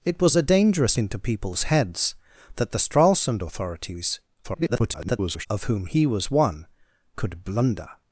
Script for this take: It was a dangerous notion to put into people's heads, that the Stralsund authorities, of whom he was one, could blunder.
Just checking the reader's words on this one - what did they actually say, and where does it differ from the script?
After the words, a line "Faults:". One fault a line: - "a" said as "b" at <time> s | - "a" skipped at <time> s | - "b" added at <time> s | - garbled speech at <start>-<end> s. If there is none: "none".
It was a dangerous into people's heads, that the Stralsund authorities, [garbled] of whom he was one, could blunder.
Faults:
- "notion to put" skipped at 1.0 s
- garbled speech at 4.4-5.5 s